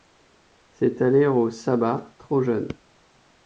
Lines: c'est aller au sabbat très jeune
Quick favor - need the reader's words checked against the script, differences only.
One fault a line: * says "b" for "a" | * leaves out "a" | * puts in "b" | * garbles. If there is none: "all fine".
* says "trop" for "très"